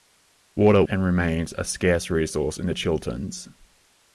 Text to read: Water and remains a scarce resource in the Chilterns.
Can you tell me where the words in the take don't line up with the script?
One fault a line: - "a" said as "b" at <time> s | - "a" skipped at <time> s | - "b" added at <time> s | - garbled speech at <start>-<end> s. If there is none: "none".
none